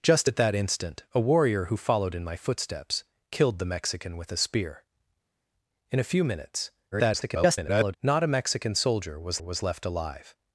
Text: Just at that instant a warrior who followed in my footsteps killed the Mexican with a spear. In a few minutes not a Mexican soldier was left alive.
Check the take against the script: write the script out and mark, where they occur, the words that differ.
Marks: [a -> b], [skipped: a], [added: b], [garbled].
Just at that instant a warrior who followed in my footsteps killed the Mexican with a spear. In a few minutes [garbled] not a Mexican soldier was [added: was] left alive.